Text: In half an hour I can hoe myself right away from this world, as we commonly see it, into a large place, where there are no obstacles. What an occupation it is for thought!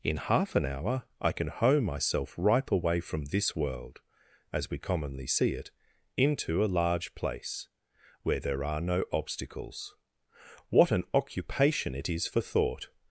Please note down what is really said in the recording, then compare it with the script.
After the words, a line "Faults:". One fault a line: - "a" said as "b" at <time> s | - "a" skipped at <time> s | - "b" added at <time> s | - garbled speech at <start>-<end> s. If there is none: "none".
In half an hour I can hoe myself ripe away from this world, as we commonly see it, into a large place, where there are no obstacles. What an occupation it is for thought!
Faults:
- "right" said as "ripe" at 2.4 s